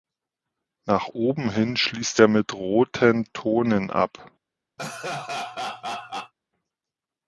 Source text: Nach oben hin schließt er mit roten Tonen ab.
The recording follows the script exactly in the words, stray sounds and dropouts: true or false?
false